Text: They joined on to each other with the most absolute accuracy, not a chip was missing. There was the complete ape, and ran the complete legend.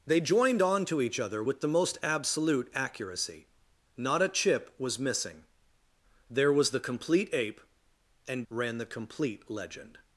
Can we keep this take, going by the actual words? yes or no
yes